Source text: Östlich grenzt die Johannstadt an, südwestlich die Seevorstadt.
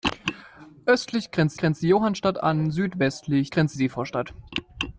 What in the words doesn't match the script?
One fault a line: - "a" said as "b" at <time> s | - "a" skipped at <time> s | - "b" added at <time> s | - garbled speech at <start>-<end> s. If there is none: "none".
- "grenzt" added at 1.5 s
- "die" said as "grenzt" at 3.5 s